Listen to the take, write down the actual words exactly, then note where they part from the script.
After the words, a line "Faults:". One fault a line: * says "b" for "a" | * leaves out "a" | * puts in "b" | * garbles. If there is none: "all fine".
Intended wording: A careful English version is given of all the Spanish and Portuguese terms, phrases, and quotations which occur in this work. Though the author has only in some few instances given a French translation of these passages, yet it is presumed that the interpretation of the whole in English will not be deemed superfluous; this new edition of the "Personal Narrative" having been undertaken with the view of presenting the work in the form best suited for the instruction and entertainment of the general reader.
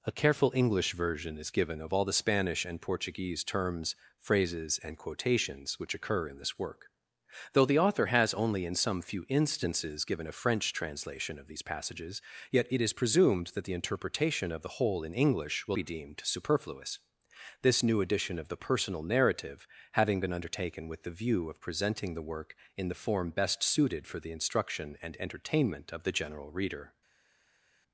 A careful English version is given of all the Spanish and Portuguese terms, phrases, and quotations which occur in this work. Though the author has only in some few instances given a French translation of these passages, yet it is presumed that the interpretation of the whole in English will be deemed superfluous; this new edition of the "Personal Narrative" having been undertaken with the view of presenting the work in the form best suited for the instruction and entertainment of the general reader.
Faults:
* leaves out "not"